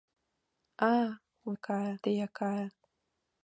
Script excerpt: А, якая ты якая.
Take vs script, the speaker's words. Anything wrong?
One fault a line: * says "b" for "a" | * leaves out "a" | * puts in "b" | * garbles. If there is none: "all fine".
all fine